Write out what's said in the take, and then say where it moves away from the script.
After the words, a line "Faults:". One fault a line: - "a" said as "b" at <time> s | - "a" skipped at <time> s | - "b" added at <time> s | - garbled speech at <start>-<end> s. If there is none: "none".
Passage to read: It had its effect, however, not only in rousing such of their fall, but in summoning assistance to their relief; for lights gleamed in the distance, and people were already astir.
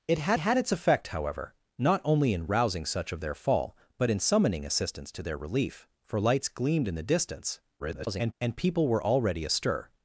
It had had its effect, however, not only in rousing such of their fall, but in summoning assistance to their relief; for lights gleamed in the distance, [garbled] and people were already astir.
Faults:
- "had" added at 0.4 s
- garbled speech at 7.8-8.3 s